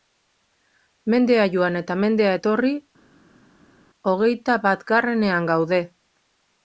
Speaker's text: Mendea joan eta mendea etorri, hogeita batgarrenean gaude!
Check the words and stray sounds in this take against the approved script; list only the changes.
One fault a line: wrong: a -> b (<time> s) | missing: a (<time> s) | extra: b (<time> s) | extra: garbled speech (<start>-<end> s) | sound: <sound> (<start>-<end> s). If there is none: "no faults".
no faults